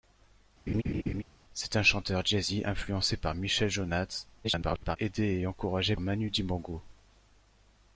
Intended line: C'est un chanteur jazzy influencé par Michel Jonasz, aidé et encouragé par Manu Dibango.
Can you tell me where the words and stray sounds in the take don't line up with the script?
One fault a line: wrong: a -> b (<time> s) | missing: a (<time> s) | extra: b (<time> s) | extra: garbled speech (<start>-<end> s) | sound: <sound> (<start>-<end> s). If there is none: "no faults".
sound: laugh (0.7-1.2 s)
extra: garbled speech (4.4-5.0 s)
missing: par (6.0 s)